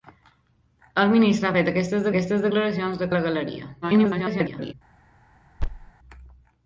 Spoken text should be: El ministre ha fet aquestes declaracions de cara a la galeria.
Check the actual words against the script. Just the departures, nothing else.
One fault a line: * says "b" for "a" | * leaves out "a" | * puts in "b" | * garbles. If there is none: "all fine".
* puts in "aquestes"
* leaves out "cara"
* garbles